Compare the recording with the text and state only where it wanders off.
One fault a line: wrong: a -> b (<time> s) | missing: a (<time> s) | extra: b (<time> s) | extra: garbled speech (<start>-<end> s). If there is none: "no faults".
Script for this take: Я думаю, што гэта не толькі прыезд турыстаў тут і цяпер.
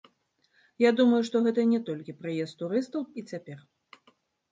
missing: тут (3.1 s)